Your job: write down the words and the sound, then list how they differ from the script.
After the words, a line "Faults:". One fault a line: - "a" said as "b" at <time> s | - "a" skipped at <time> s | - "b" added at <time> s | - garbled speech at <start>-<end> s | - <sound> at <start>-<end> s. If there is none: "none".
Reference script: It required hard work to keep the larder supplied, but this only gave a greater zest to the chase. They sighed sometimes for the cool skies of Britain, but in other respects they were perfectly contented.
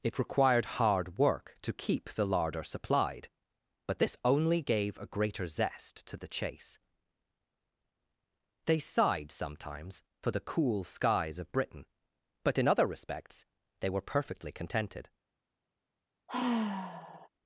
It required hard work to keep the larder supplied, but this only gave a greater zest to the chase. They sighed sometimes for the cool skies of Britain, but in other respects they were perfectly contented.
Faults:
- sigh at 16.3-17.3 s